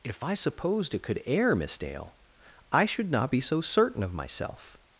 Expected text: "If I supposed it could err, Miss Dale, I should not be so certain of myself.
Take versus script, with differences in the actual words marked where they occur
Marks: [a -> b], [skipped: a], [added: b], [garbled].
"If I supposed it could err, Miss Dale, I should not be so certain of myself.